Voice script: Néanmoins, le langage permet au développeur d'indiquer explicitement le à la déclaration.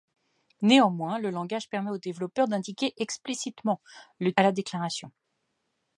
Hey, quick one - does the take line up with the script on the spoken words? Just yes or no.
yes